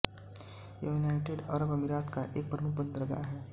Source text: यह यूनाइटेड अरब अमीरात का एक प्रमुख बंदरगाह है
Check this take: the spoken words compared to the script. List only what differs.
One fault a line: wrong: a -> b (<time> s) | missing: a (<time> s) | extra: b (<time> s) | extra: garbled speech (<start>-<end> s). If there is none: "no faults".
no faults